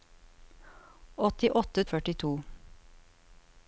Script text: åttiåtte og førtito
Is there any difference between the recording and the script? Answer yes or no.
no